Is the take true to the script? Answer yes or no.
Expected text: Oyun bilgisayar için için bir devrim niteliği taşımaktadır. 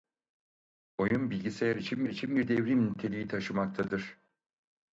yes